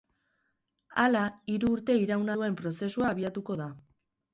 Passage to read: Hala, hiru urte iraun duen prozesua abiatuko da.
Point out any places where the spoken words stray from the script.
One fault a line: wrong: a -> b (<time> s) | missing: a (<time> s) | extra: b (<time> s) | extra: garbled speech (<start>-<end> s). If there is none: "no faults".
no faults